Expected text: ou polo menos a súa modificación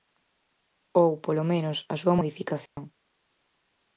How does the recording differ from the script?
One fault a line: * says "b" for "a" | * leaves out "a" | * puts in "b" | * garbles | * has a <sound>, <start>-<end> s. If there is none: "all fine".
* has a dropout, 2.7-2.8 s